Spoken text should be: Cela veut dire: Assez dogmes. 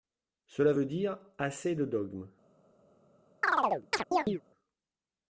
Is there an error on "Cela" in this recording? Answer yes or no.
no